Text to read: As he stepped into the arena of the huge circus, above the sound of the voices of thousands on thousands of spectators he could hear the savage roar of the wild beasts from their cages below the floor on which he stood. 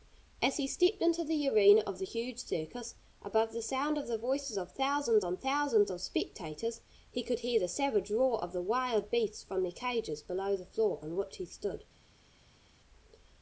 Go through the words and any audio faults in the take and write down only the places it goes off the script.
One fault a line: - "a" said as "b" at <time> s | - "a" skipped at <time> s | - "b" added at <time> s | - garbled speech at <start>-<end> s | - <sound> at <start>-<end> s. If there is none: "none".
none